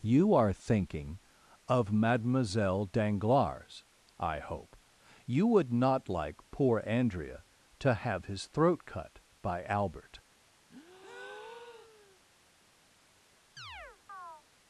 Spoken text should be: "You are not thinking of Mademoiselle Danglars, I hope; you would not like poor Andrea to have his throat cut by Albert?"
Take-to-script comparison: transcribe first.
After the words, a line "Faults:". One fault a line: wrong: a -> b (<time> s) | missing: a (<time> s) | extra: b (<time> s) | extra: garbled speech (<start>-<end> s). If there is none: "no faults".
"You are thinking of Mademoiselle Danglars, I hope; you would not like poor Andrea to have his throat cut by Albert?"
Faults:
missing: not (0.5 s)